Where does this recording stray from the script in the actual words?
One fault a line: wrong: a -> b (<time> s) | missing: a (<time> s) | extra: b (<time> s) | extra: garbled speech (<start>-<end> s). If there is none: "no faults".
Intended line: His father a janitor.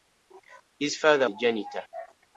no faults